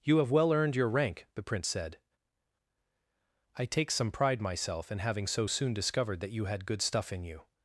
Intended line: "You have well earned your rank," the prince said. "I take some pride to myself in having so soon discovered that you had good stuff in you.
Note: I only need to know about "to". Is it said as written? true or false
false